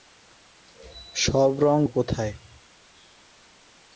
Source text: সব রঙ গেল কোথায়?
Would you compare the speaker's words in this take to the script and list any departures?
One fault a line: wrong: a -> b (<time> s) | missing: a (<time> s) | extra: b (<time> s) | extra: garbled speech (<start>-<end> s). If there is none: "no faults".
missing: গেল (1.8 s)